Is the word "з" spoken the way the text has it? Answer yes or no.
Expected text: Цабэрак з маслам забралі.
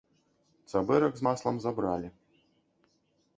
yes